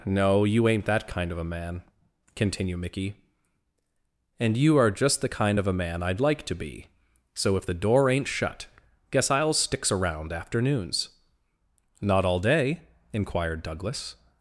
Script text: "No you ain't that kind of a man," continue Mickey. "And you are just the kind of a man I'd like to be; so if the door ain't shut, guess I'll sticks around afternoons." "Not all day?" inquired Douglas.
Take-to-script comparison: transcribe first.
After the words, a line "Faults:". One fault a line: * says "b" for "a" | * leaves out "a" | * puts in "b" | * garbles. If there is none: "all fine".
"No you ain't that kind of a man," continue Mickey. "And you are just the kind of a man I'd like to be; so if the door ain't shut, guess I'll sticks around afternoons." "Not all day?" inquired Douglas.
Faults:
all fine